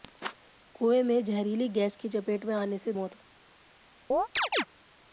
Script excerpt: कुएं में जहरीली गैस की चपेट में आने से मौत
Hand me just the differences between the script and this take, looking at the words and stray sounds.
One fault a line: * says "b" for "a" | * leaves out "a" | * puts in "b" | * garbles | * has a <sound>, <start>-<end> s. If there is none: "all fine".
* has a chirp, 4.1-4.6 s